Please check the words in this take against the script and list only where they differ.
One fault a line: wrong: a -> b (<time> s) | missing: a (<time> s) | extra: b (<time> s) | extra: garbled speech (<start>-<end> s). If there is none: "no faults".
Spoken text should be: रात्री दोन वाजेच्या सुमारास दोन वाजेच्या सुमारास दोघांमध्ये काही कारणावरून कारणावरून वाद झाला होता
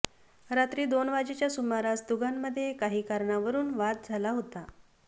missing: दोन वाजेच्या सुमारास (2.0 s)
missing: कारणावरून (3.7 s)